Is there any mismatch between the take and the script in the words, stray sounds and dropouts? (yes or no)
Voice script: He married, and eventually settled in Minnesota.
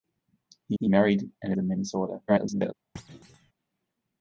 yes